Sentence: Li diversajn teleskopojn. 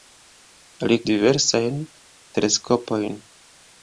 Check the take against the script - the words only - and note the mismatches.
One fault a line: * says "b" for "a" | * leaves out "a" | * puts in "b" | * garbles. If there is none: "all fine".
all fine